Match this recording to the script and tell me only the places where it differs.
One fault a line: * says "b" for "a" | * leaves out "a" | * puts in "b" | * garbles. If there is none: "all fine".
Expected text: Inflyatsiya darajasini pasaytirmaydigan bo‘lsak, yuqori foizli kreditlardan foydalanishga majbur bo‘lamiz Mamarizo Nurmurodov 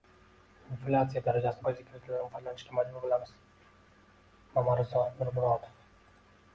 * leaves out "pasaytirmaydigan bo‘lsak yuqori"